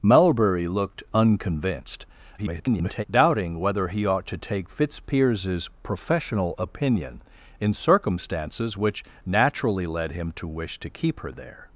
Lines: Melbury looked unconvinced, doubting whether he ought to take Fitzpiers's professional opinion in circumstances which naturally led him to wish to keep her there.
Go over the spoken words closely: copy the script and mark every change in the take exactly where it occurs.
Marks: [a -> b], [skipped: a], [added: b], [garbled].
Melbury looked unconvinced, [garbled] doubting whether he ought to take Fitzpiers's professional opinion in circumstances which naturally led him to wish to keep her there.